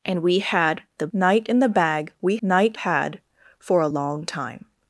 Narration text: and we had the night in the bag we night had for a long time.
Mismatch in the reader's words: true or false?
false